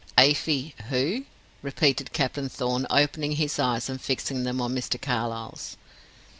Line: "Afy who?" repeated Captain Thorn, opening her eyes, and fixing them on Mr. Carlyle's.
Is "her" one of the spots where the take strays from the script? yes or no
yes